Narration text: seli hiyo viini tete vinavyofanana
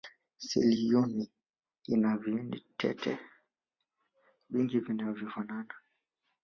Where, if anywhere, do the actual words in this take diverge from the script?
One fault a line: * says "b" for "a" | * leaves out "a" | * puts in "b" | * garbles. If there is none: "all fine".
* puts in "ina"
* puts in "vingi"